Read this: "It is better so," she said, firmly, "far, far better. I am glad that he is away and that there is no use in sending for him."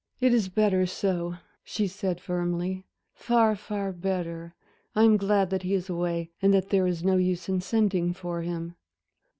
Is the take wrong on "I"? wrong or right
right